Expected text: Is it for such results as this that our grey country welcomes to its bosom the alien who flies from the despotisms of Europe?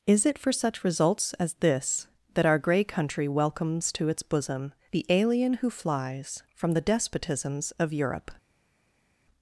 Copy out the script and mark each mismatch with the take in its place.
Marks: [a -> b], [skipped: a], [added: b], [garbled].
Is it for such results as this that our grey country welcomes to its bosom the alien who flies from the despotisms of Europe?